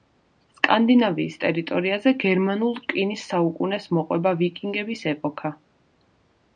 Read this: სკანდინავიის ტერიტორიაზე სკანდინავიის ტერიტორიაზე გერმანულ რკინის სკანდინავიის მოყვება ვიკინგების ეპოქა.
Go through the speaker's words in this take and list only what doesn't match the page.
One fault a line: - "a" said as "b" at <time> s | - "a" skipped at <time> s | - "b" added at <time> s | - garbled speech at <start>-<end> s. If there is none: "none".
- "სკანდინავიის ტერიტორიაზე" skipped at 2.1 s
- "სკანდინავიის" said as "საუკუნეს" at 3.3 s